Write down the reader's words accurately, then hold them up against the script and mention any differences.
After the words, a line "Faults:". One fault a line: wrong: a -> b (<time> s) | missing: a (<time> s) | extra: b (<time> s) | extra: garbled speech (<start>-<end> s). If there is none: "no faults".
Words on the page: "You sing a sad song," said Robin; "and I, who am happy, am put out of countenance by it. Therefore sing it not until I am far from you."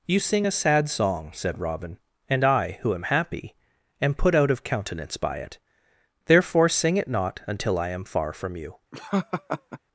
"You sing a sad song," said Robin; "and I, who am happy, am put out of countenance by it. Therefore sing it not until I am far from you."
Faults:
no faults